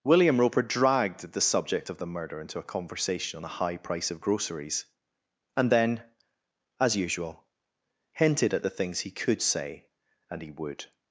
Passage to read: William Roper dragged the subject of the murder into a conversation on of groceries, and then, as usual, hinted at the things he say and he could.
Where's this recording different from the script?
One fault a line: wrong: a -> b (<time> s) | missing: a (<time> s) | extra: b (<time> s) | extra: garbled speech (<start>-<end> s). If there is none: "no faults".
extra: the high price (3.4 s)
extra: could (9.1 s)
wrong: could -> would (10.5 s)